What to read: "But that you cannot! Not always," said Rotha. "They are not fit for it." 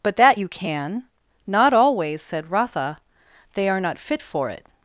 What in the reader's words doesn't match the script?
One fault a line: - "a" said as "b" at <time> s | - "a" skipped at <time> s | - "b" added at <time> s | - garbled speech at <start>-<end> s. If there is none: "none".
- "cannot" said as "can" at 0.5 s